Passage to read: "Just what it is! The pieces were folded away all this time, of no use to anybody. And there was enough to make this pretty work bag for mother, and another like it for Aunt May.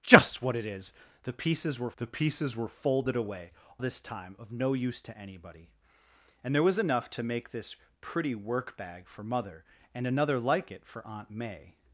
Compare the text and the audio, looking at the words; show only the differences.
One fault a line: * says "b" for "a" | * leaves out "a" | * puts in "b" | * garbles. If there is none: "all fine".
* puts in "the pieces were"
* leaves out "all"